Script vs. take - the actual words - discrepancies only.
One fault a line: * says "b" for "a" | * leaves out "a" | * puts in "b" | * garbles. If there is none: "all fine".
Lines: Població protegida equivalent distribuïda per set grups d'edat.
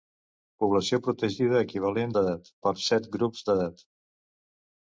* says "d'edat" for "distribuïda"